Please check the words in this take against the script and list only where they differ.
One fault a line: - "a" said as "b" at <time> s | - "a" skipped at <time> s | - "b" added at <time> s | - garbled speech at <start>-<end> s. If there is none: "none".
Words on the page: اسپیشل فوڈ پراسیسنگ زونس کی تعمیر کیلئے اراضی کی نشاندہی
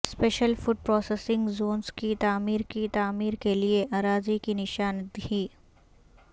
- "کی تعمیر" added at 2.7 s